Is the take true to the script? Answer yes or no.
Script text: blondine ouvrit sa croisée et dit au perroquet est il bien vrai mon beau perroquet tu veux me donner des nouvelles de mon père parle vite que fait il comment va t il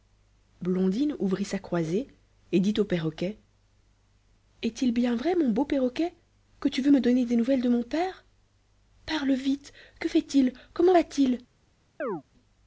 no